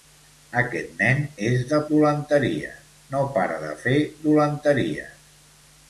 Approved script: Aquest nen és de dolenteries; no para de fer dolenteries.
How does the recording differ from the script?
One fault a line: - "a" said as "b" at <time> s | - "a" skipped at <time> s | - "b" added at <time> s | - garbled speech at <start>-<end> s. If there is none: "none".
none